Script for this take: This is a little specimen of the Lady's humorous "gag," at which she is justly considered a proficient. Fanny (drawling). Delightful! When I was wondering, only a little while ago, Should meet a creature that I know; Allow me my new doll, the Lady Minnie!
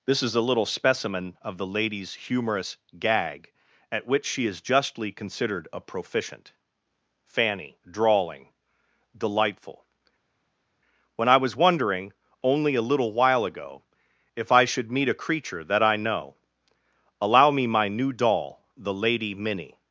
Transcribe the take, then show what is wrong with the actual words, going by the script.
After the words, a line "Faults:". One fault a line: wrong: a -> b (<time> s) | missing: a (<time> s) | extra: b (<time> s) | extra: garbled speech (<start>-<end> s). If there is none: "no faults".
This is a little specimen of the Lady's humorous "gag," at which she is justly considered a proficient. Fanny (drawling). Delightful! When I was wondering, only a little while ago, If I should meet a creature that I know; Allow me my new doll, the Lady Minnie!
Faults:
extra: If I (14.3 s)